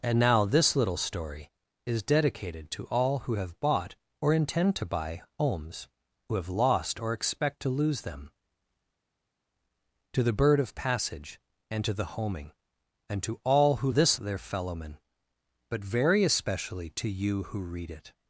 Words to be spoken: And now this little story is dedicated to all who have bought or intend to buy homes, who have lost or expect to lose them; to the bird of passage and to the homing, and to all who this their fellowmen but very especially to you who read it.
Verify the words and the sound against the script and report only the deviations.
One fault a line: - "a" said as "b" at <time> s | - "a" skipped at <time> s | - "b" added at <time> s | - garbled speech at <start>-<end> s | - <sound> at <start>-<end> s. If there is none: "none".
none